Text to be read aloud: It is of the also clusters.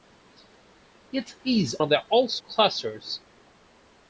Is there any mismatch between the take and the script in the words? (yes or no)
no